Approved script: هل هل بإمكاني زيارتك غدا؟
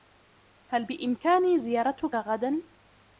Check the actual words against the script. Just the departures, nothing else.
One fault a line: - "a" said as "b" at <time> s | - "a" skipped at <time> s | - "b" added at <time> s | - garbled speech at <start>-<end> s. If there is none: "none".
- "هل" skipped at 0.8 s